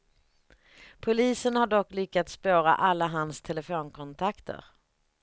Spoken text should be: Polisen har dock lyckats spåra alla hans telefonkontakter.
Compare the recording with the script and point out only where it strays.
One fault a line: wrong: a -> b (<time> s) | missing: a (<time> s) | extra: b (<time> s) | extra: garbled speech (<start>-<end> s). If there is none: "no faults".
no faults